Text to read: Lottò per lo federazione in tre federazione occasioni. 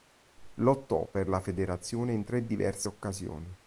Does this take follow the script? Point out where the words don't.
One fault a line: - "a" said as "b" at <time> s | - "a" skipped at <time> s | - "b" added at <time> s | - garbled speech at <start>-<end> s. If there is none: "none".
- "lo" said as "la" at 1.3 s
- "federazione" said as "diverse" at 2.5 s